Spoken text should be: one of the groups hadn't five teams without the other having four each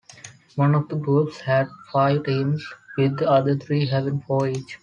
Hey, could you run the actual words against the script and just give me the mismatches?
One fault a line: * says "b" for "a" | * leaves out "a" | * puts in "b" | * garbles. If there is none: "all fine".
* says "had" for "hadn't"
* says "with" for "without"
* puts in "three"